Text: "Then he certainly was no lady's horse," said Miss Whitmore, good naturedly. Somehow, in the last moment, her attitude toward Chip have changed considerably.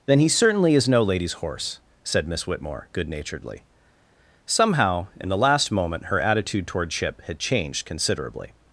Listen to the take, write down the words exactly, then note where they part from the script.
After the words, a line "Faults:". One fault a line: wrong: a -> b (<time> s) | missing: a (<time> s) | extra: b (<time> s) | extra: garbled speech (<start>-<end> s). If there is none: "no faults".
"Then he certainly is no lady's horse," said Miss Whitmore, good naturedly. Somehow, in the last moment, her attitude toward Chip had changed considerably.
Faults:
wrong: was -> is (0.8 s)
wrong: have -> had (7.2 s)